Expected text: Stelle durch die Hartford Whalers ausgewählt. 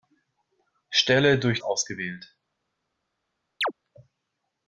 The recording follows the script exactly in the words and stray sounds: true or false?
false